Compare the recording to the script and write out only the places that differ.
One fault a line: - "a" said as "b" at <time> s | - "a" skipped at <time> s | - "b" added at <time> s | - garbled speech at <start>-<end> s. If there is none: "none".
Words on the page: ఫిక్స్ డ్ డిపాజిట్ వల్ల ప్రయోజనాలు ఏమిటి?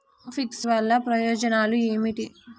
- "డ్ డిపాజిట్" skipped at 0.6 s